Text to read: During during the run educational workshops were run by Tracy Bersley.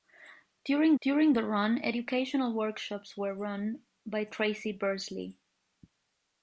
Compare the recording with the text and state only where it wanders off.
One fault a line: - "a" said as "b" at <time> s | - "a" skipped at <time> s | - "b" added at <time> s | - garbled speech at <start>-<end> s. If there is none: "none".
none